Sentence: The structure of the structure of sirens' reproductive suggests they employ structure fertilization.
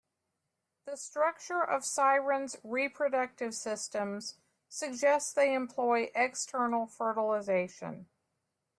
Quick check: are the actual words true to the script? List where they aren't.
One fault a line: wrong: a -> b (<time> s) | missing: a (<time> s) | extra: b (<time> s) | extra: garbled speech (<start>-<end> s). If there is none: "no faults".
missing: the structure of (1.9 s)
extra: systems (3.5 s)
wrong: structure -> external (6.1 s)